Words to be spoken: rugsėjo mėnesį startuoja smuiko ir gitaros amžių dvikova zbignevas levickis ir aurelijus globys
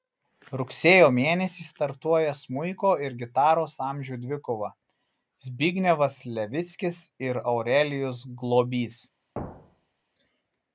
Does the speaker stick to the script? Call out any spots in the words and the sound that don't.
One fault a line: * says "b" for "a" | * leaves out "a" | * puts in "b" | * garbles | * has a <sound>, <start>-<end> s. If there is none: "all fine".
* has a thud, 9.3-10.0 s